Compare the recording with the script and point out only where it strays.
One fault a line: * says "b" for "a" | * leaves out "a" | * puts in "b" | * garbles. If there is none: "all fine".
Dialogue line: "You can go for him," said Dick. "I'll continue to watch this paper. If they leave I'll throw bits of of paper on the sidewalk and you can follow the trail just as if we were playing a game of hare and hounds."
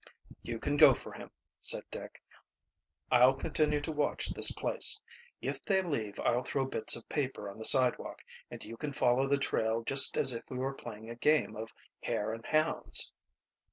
* says "place" for "paper"
* leaves out "of"